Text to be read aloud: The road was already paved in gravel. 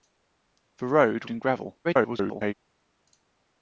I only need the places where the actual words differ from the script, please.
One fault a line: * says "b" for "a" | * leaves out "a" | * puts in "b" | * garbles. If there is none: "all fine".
* leaves out "was already paved"
* garbles